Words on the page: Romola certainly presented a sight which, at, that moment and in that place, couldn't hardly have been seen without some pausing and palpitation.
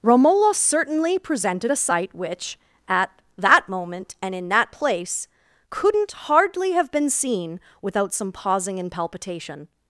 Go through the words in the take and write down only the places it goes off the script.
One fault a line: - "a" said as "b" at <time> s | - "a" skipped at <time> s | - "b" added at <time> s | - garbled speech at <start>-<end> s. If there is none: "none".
none